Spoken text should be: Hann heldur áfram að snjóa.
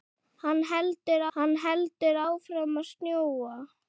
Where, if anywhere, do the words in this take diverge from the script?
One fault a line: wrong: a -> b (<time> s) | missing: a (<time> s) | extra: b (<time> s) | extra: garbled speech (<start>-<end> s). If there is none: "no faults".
extra: hann heldur (1.4 s)